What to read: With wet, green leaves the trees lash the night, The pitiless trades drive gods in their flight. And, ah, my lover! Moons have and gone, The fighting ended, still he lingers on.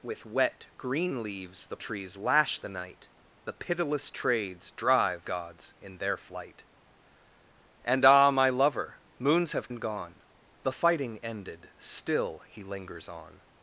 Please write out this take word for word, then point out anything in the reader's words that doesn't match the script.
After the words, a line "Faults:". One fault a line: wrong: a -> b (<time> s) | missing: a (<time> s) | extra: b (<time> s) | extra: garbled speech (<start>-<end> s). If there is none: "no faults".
With wet, green leaves the trees lash the night, The pitiless trades drive gods in their flight. And, ah, my lover! Moons have and gone, The fighting ended, still he lingers on.
Faults:
no faults